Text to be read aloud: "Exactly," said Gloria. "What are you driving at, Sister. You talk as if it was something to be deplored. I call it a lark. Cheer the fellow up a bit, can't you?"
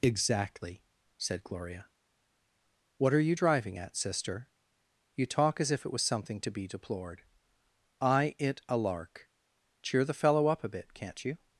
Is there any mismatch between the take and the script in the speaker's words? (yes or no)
yes